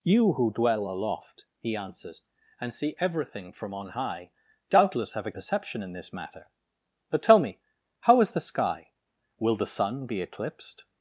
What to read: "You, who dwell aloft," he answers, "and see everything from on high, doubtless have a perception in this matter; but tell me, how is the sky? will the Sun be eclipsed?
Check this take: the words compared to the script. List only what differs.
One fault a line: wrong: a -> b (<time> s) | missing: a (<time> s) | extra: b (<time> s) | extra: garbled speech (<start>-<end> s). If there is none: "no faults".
no faults